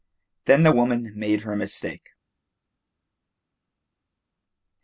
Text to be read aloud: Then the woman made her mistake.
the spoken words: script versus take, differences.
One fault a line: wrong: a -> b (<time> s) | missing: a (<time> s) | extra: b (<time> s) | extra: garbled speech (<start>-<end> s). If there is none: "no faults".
no faults